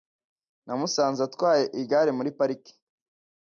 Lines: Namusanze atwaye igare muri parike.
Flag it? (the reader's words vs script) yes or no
no